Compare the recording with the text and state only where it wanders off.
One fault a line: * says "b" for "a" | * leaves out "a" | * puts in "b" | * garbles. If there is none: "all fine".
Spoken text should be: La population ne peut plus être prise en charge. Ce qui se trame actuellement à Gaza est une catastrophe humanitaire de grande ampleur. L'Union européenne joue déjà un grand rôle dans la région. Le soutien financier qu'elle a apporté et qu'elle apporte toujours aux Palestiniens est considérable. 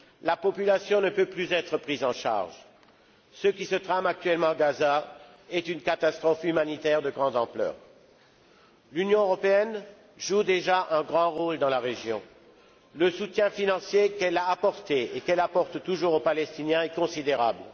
all fine